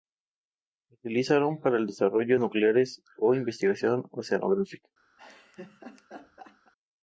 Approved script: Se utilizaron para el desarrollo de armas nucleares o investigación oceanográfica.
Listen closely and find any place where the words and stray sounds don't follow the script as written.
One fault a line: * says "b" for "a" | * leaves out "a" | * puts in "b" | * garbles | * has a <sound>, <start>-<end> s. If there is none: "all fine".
* leaves out "de armas"
* has a laugh, 5.2-6.7 s